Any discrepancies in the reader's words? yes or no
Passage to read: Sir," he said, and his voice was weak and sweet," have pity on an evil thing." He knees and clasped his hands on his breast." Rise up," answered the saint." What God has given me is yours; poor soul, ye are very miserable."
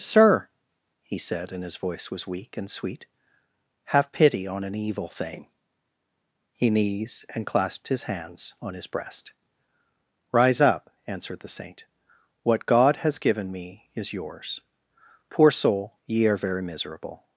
no